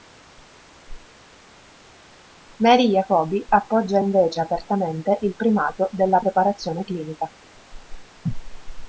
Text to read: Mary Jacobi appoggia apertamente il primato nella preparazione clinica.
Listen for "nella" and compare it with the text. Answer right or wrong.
wrong